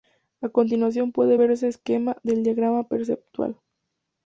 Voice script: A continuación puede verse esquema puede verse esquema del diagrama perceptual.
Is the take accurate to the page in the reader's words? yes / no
no